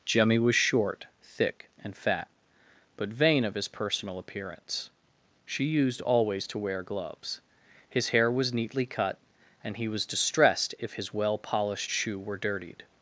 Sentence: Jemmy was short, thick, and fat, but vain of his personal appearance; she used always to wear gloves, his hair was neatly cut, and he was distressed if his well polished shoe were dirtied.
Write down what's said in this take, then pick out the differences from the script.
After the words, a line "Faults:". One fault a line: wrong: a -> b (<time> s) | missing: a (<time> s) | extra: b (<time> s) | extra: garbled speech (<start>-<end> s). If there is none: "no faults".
Jemmy was short, thick, and fat, but vain of his personal appearance; she used always to wear gloves, his hair was neatly cut, and he was distressed if his well polished shoe were dirtied.
Faults:
no faults